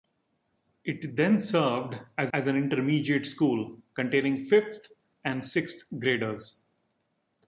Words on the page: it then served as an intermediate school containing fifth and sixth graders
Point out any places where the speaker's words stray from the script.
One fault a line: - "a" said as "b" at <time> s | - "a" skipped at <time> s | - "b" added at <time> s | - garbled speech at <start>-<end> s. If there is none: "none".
- "as" added at 2.3 s